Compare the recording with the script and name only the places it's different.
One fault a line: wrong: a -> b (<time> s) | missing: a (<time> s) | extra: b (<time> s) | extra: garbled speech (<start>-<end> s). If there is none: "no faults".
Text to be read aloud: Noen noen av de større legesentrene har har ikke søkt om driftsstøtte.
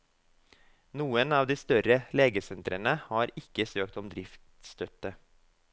missing: noen (1.4 s)
missing: har (3.4 s)